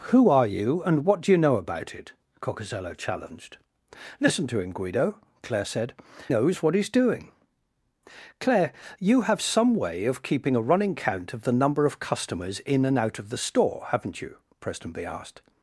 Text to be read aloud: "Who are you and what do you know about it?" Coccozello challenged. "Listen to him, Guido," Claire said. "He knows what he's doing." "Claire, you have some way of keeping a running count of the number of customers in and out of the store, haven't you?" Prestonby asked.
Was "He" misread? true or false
true